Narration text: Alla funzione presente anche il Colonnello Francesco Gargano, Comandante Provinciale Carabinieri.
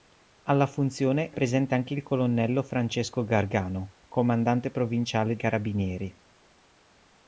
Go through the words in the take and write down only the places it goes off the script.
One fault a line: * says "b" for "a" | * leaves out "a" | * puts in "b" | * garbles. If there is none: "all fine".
all fine